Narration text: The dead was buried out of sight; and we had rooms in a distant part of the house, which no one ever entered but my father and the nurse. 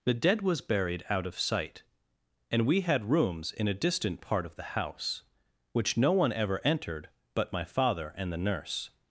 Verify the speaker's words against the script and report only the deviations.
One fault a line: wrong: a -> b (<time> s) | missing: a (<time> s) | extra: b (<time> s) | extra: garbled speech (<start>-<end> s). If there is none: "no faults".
no faults